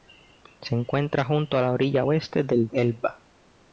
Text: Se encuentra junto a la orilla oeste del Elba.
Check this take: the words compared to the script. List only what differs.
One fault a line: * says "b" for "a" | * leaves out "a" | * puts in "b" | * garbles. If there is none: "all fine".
all fine